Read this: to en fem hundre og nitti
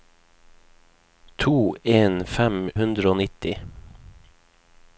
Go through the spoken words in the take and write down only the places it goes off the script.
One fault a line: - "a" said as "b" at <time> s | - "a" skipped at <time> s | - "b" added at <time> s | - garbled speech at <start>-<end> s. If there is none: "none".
none